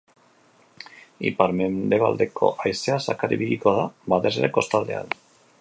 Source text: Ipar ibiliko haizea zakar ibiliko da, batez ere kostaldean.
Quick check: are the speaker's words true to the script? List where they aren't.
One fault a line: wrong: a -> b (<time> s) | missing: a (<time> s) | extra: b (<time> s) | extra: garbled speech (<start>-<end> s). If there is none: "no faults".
wrong: ibiliko -> mendebaldeko (1.6 s)